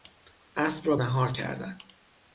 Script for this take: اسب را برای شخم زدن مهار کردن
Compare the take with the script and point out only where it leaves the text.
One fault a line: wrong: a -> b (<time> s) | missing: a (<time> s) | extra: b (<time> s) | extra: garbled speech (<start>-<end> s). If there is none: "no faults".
missing: برای شخم زدن (1.0 s)